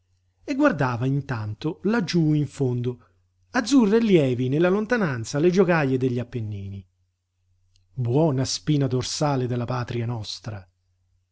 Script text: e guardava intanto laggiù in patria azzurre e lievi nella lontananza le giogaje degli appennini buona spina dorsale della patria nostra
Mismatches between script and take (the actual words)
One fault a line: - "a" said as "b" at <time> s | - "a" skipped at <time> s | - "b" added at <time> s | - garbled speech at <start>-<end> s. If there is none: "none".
- "patria" said as "fondo" at 2.5 s